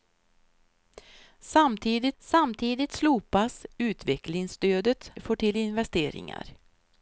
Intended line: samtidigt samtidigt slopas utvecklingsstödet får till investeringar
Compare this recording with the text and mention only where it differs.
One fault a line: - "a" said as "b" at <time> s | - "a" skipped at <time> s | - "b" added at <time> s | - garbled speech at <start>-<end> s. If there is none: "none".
none